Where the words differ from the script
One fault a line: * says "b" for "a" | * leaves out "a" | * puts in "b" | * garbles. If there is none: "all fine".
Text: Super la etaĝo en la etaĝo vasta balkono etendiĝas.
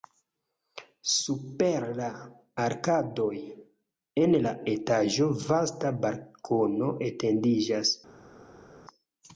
* says "arkadoj" for "etaĝo"